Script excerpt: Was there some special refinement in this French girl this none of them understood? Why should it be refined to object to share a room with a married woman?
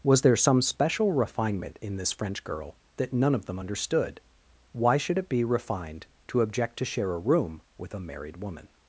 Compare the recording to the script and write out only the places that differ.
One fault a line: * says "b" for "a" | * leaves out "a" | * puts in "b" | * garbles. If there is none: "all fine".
* says "that" for "this"